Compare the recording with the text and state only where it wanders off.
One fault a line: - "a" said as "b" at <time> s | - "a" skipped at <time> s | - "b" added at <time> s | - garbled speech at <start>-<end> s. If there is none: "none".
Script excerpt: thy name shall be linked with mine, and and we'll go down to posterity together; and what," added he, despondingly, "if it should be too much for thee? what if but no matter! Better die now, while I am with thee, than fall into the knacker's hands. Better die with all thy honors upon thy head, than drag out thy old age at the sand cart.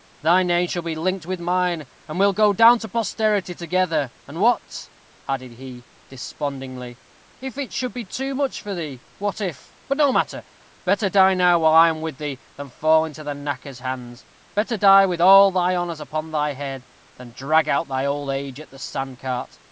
- "and" skipped at 2.2 s